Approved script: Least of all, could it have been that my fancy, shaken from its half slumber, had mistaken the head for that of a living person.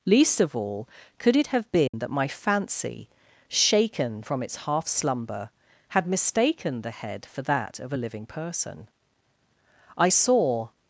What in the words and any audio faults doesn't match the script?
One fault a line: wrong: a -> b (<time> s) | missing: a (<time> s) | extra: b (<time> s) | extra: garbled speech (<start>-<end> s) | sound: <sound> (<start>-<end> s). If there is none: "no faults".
sound: dropout (1.9-1.9 s)
extra: I saw (10.0 s)